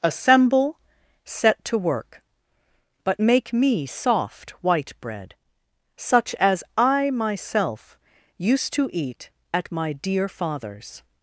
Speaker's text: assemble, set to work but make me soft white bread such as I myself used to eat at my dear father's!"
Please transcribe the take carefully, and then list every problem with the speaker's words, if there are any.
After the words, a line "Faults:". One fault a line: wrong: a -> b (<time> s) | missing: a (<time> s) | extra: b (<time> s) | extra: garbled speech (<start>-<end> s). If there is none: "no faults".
assemble, set to work but make me soft white bread such as I myself used to eat at my dear father's!"
Faults:
no faults